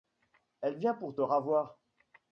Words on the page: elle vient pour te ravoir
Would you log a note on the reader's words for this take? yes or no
no